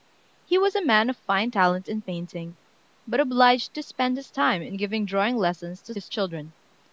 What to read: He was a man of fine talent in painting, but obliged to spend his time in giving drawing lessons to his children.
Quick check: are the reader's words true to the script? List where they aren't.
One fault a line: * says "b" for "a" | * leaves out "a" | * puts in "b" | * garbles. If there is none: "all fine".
all fine